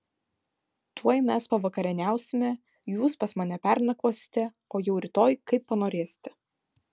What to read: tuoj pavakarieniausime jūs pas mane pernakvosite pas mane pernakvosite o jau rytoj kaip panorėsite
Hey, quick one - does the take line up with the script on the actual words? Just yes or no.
no